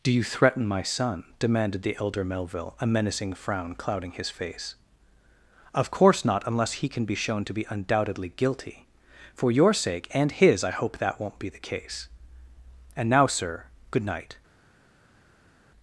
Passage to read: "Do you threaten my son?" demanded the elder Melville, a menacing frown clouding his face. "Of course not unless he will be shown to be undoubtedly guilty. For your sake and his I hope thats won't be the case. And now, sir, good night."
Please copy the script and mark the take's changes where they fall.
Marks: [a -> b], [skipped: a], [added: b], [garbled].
"Do you threaten my son?" demanded the elder Melville, a menacing frown clouding his face. "Of course not unless he [will -> can] be shown to be undoubtedly guilty. For your sake and his I hope [thats -> that] won't be the case. And now, sir, good night."